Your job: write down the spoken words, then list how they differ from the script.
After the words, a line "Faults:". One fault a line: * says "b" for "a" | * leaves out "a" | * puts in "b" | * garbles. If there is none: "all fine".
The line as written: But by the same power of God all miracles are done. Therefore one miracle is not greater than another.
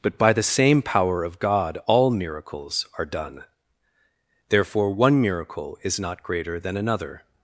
But by the same power of God all miracles are done. Therefore one miracle is not greater than another.
Faults:
all fine